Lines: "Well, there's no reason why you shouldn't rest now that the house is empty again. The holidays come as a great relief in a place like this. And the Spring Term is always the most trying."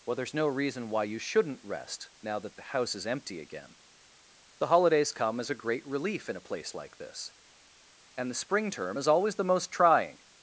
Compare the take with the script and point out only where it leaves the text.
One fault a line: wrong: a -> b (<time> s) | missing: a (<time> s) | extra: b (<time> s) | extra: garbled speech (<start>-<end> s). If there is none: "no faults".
no faults